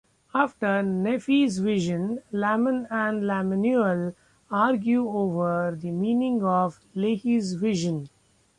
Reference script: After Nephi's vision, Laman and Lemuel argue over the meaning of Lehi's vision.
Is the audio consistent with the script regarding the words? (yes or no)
yes